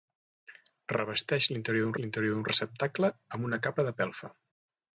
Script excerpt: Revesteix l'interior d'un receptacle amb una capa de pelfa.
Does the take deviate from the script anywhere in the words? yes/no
yes